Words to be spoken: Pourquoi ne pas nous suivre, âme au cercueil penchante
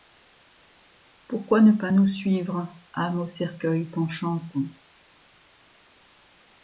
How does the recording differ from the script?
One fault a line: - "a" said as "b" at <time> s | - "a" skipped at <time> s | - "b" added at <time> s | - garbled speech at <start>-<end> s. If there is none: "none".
none